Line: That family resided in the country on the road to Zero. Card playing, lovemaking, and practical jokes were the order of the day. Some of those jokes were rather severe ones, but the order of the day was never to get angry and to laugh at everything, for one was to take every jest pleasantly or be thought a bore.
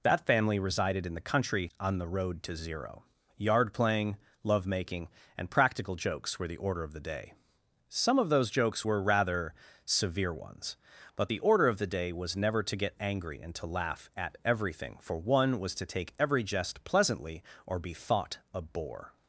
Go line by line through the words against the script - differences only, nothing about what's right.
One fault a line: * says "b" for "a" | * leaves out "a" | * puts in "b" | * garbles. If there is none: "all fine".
* says "Yard" for "Card"